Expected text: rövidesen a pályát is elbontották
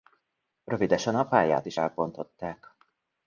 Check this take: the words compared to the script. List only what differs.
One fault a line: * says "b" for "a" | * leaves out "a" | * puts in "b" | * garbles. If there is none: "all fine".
all fine